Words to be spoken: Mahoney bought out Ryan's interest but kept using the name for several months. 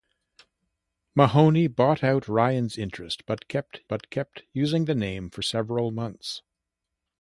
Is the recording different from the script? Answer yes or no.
yes